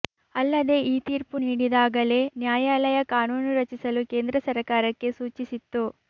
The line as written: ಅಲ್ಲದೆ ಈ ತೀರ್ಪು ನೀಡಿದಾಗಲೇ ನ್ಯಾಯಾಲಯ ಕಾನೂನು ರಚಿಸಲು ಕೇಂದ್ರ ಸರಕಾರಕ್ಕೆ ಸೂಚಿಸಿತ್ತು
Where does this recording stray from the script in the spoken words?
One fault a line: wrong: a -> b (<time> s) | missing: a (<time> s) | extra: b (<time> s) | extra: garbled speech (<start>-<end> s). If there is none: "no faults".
no faults